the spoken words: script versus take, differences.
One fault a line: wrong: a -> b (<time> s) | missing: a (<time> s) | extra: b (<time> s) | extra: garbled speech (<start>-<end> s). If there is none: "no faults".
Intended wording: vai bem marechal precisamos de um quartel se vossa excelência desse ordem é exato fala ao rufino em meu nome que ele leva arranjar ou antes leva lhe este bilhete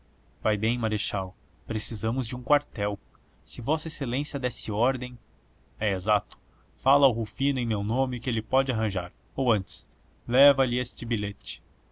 wrong: leva -> pode (8.4 s)